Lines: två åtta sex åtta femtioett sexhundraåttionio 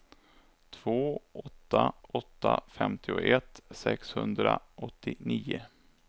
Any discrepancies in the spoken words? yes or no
yes